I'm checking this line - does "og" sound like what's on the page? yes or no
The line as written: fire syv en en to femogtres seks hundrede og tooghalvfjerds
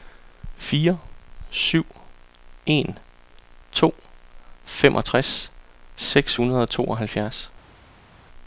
yes